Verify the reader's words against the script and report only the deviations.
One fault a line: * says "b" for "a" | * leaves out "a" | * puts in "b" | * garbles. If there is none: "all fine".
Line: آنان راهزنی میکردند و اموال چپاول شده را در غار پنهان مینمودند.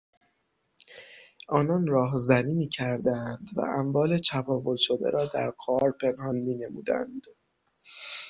all fine